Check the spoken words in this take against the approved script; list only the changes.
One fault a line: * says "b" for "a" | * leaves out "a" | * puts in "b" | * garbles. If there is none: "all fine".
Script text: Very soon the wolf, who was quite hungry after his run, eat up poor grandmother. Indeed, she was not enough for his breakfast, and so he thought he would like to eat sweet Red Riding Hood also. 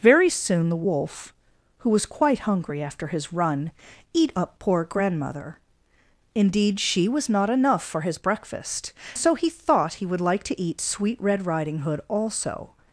* leaves out "and"